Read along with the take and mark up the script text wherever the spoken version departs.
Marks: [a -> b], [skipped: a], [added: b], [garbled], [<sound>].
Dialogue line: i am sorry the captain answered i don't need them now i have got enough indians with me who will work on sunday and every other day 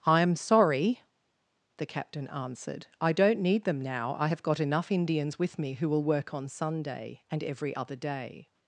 i am sorry the captain answered i don't need them now i have got enough indians with me who will work on sunday and every other day